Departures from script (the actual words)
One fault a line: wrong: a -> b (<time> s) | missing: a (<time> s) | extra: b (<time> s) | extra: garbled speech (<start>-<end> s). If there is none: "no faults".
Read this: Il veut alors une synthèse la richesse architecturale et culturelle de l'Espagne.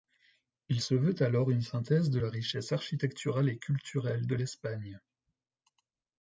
extra: se (0.8 s)
extra: de (2.1 s)